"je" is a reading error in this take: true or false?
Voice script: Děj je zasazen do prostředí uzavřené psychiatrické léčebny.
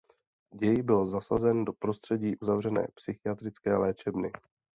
true